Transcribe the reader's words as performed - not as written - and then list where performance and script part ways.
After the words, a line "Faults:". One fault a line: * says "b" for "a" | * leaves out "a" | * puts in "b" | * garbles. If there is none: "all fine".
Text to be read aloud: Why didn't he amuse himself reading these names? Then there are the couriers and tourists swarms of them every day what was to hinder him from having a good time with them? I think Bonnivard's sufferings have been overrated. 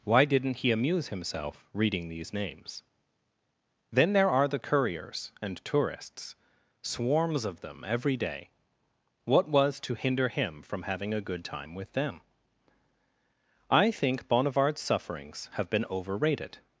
Why didn't he amuse himself reading these names? Then there are the couriers and tourists swarms of them every day what was to hinder him from having a good time with them? I think Bonnivard's sufferings have been overrated.
Faults:
all fine